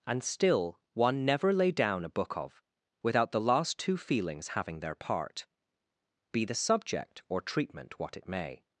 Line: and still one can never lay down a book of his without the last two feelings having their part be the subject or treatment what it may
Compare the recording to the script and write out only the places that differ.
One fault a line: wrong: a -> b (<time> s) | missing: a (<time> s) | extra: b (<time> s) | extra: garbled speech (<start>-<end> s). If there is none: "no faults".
missing: can (1.2 s)
missing: his (2.6 s)